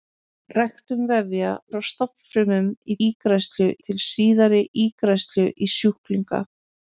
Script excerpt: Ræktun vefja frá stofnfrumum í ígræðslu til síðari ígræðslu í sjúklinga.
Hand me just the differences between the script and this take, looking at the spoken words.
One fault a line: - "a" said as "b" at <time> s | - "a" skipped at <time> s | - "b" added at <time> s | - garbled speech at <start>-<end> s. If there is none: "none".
none